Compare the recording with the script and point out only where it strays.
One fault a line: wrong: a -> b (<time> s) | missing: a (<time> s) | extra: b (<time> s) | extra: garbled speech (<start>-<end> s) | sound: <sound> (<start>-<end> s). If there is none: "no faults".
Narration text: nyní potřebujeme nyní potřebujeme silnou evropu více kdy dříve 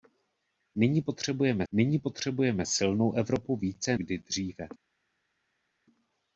no faults